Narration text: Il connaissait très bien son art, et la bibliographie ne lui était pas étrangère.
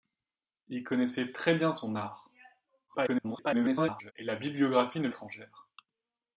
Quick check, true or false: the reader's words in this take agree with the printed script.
false